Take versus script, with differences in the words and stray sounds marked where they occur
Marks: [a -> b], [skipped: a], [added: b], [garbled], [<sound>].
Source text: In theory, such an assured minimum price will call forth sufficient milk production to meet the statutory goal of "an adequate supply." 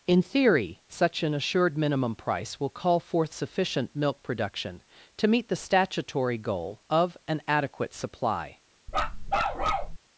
In theory, such an assured minimum price will call forth sufficient milk production to meet the statutory goal of "an adequate supply." [bark]